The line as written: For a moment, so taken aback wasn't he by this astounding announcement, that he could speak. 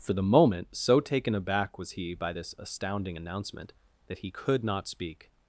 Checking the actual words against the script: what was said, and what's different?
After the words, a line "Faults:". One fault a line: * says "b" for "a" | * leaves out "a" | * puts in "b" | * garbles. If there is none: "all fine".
For the moment, so taken aback was he by this astounding announcement, that he could not speak.
Faults:
* says "the" for "a"
* says "was" for "wasn't"
* puts in "not"